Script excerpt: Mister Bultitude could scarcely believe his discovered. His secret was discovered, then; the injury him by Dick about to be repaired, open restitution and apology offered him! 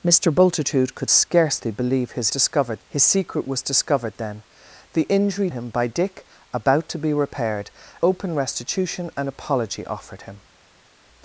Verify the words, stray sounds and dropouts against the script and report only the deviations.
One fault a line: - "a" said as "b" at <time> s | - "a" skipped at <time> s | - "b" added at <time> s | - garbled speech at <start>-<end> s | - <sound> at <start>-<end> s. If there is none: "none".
none